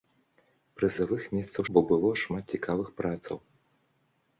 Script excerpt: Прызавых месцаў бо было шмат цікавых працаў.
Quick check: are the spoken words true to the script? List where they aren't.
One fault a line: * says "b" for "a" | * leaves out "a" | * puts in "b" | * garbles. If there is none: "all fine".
all fine